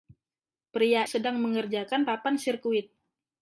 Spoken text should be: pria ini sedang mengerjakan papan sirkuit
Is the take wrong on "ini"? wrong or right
wrong